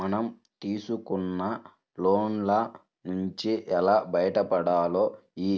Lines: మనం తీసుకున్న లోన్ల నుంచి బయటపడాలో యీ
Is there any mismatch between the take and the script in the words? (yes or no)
yes